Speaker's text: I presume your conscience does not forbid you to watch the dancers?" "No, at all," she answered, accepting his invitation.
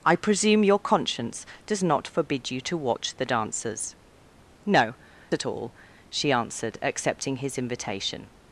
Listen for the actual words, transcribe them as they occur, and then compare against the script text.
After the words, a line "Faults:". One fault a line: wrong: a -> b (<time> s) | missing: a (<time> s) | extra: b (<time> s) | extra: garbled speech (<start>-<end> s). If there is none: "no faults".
I presume your conscience does not forbid you to watch the dancers?" "No, at all," she answered, accepting his invitation.
Faults:
no faults